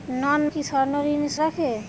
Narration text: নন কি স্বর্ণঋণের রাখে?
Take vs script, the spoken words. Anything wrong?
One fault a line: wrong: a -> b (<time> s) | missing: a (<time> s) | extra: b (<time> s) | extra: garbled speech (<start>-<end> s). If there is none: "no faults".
no faults